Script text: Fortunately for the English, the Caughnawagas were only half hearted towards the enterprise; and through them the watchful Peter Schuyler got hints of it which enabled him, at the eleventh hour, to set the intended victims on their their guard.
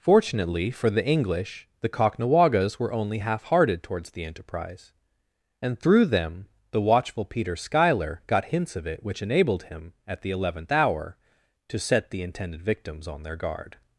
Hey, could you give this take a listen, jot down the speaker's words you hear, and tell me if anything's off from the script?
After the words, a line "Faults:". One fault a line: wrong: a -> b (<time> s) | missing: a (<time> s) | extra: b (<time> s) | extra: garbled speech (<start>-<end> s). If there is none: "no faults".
Fortunately for the English, the Caughnawagas were only half hearted towards the enterprise; and through them the watchful Peter Schuyler got hints of it which enabled him, at the eleventh hour, to set the intended victims on their guard.
Faults:
missing: their (13.4 s)